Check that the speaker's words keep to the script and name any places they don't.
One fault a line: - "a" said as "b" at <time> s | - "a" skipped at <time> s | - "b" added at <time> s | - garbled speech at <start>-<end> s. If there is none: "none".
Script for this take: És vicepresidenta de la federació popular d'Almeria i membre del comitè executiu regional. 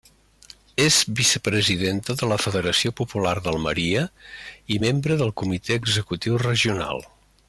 none